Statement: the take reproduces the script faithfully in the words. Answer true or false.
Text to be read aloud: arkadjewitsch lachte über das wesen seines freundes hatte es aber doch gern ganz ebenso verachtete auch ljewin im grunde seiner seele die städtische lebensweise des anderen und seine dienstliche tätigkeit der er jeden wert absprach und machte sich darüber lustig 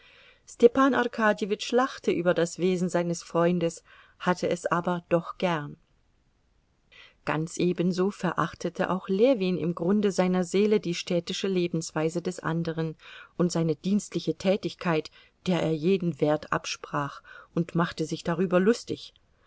true